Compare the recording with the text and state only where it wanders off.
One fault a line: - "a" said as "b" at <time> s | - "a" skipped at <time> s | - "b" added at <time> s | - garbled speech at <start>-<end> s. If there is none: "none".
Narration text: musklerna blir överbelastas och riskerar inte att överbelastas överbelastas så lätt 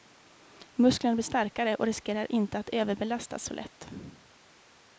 - "överbelastas" said as "starkare" at 1.2 s
- "överbelastas" skipped at 3.4 s